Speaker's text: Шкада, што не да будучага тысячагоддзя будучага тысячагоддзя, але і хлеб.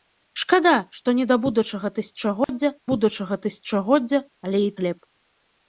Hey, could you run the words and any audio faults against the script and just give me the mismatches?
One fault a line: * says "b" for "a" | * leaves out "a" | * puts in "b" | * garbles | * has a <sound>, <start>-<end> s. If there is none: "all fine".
* has a dropout, 2.4-2.5 s